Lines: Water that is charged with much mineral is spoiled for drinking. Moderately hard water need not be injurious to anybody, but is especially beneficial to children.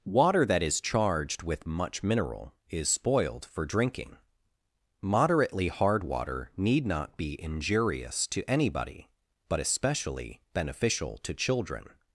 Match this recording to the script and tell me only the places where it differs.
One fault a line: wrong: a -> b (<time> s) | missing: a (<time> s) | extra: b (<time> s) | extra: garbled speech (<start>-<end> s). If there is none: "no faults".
missing: is (9.6 s)